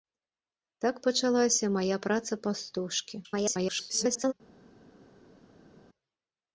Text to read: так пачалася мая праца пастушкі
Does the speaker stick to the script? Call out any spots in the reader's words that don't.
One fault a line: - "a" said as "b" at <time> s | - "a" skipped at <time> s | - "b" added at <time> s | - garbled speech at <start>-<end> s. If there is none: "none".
- garbled speech at 3.2-4.3 s